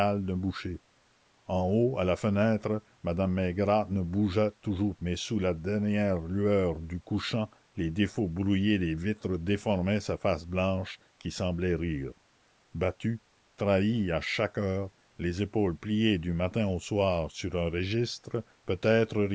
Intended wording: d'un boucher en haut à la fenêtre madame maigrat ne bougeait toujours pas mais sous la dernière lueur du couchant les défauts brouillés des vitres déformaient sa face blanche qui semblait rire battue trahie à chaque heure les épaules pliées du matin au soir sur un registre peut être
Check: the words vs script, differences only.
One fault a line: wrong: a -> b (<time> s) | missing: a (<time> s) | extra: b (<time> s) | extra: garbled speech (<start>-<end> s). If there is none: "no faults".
missing: pas (5.0 s)